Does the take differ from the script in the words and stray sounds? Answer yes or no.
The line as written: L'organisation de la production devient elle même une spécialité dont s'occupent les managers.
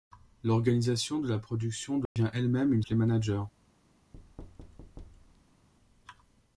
yes